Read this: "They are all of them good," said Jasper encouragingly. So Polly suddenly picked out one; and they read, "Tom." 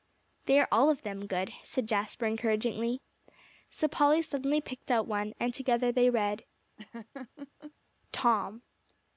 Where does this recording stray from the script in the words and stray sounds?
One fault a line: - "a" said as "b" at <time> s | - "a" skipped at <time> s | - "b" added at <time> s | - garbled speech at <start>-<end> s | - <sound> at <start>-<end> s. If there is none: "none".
- "together" added at 5.5 s
- laugh at 6.8-7.7 s